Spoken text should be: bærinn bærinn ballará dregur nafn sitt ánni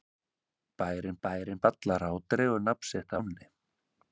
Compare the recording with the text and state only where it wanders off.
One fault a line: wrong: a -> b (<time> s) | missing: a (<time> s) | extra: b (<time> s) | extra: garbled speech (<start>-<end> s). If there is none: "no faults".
no faults